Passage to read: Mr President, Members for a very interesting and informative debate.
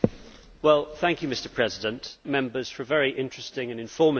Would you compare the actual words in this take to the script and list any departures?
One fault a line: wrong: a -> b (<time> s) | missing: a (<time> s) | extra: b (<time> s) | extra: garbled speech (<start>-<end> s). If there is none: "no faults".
no faults